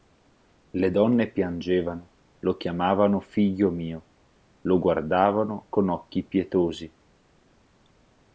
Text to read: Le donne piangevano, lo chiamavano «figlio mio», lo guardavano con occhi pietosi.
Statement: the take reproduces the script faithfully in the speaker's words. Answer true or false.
true